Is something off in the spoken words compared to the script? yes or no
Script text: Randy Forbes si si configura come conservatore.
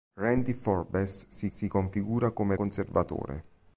no